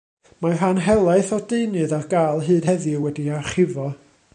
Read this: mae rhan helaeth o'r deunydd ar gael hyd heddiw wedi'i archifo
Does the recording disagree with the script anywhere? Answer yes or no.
no